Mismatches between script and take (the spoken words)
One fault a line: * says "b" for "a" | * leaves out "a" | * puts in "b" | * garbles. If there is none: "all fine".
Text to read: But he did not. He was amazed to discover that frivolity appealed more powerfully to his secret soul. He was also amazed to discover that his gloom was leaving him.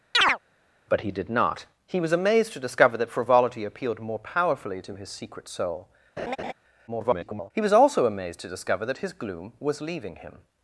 * garbles